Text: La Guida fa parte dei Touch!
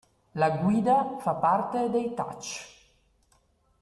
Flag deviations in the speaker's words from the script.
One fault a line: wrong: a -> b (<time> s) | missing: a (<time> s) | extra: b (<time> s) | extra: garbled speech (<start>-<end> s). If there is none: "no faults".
no faults